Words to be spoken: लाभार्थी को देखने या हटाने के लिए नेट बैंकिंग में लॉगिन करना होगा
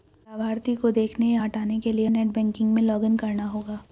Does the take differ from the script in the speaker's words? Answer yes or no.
no